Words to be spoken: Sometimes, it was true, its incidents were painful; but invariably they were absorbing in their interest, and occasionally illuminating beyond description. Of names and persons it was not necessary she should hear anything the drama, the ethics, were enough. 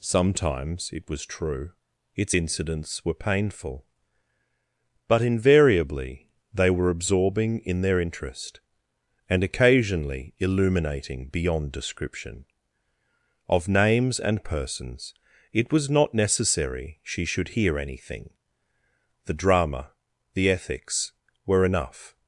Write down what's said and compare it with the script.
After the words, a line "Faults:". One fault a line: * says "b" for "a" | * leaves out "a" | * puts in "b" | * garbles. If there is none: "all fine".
Sometimes, it was true, its incidents were painful; but invariably they were absorbing in their interest, and occasionally illuminating beyond description. Of names and persons it was not necessary she should hear anything the drama, the ethics, were enough.
Faults:
all fine